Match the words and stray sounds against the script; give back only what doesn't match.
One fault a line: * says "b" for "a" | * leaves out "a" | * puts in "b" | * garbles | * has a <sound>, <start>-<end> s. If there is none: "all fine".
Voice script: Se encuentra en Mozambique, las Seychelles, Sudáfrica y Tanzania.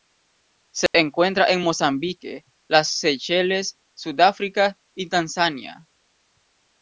* has a dropout, 0.9-0.9 s